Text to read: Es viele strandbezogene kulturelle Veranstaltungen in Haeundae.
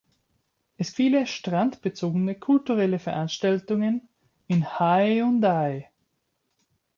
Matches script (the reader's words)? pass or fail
pass